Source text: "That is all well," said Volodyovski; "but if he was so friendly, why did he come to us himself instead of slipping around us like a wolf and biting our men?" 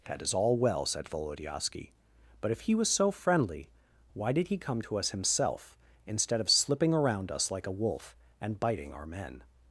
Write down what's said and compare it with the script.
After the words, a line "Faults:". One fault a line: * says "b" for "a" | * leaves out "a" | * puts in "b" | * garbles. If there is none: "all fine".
"That is all well," said Volodyovski; "but if he was so friendly, why did he come to us himself instead of slipping around us like a wolf and biting our men?"
Faults:
all fine